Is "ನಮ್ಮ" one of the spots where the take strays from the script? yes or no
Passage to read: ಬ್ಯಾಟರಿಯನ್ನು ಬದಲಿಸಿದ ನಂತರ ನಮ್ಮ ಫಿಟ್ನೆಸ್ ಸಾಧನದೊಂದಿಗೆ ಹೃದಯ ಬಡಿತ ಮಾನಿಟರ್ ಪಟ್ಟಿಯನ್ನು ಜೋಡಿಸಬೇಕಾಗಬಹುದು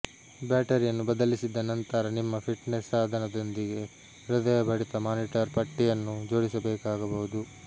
yes